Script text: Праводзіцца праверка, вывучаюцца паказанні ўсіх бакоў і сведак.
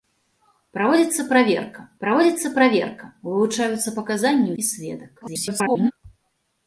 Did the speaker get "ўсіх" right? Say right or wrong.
wrong